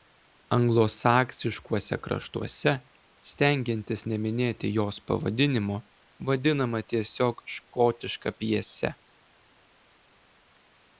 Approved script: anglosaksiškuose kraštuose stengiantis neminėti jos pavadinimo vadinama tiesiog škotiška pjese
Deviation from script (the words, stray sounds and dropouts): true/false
false